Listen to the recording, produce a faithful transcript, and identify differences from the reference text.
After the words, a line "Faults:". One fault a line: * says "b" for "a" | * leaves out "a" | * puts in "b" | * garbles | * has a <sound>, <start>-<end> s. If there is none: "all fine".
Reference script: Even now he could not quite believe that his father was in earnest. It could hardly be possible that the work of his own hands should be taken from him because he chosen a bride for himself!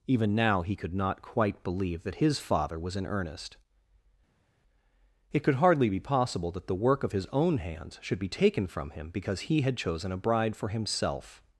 Even now he could not quite believe that his father was in earnest. It could hardly be possible that the work of his own hands should be taken from him because he had chosen a bride for himself!
Faults:
* puts in "had"